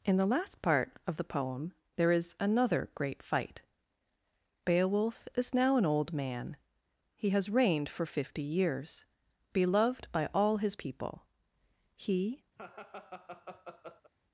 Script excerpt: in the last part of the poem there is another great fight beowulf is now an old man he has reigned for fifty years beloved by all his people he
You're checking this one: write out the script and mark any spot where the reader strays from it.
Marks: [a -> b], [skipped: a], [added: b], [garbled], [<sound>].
in the last part of the poem there is another great fight beowulf is now an old man he has reigned for fifty years beloved by all his people he [laugh]